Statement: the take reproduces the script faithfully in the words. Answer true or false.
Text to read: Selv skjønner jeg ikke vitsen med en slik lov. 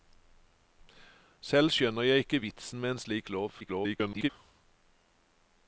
false